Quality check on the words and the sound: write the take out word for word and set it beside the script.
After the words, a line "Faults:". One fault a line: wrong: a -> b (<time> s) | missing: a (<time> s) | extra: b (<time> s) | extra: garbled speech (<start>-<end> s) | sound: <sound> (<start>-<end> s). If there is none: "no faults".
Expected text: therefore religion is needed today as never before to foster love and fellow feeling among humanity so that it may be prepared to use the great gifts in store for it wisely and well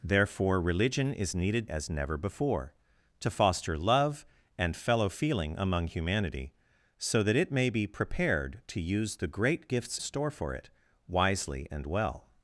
therefore religion is needed as never before to foster love and fellow feeling among humanity so that it may be prepared to use the great gifts store for it wisely and well
Faults:
missing: today (1.7 s)
missing: in (10.0 s)